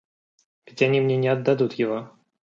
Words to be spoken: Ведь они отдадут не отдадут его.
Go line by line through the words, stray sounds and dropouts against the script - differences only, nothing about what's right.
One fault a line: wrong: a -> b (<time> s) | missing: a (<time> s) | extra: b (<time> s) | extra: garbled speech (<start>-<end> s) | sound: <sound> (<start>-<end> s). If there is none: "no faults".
wrong: отдадут -> мне (1.0 s)